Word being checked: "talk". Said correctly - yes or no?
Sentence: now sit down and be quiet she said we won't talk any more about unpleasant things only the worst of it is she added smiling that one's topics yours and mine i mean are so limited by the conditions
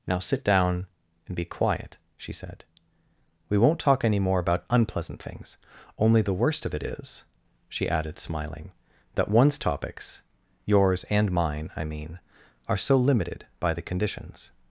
yes